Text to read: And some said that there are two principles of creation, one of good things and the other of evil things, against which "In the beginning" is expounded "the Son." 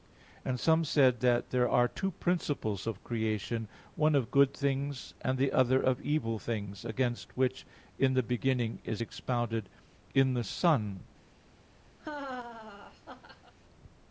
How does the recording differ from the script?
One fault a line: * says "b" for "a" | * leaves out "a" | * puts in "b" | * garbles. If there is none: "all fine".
* puts in "in"